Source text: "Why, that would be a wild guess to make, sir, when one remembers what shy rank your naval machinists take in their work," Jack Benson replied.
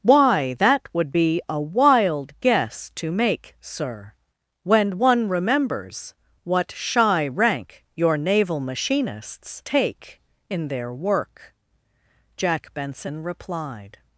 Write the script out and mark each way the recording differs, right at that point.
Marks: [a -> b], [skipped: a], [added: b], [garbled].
"Why, that would be a wild guess to make, sir, when one remembers what shy rank your naval machinists take in their work," Jack Benson replied.